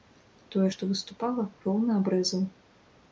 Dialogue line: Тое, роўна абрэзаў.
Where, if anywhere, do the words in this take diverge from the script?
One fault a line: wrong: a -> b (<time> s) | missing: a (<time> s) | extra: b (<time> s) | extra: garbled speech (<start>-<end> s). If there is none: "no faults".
extra: што выступала (0.7 s)